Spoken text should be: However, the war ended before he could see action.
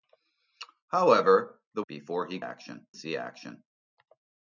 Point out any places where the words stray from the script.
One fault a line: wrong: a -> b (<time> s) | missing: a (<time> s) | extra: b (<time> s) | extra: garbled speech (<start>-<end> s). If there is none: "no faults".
missing: war ended (1.8 s)
wrong: could -> action (2.4 s)